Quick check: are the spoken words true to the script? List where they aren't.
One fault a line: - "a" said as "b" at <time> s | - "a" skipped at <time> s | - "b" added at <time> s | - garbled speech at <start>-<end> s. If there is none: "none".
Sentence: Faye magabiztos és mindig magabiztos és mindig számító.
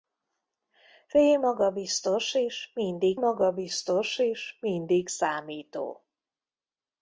none